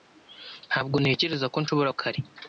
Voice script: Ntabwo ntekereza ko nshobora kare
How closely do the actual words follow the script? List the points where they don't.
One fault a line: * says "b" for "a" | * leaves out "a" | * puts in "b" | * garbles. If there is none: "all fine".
all fine